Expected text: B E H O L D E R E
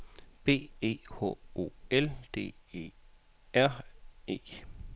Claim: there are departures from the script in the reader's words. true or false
false